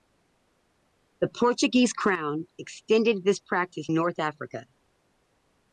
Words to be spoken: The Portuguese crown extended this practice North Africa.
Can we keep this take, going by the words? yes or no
yes